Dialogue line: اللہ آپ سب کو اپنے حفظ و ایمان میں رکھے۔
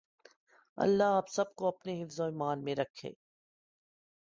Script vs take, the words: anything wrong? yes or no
no